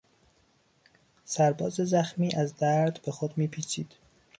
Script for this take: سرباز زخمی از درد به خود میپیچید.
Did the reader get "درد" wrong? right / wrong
right